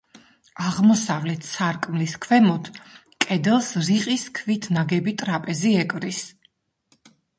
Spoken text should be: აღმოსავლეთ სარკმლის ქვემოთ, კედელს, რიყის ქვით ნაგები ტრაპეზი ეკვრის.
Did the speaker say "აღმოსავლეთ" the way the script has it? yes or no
yes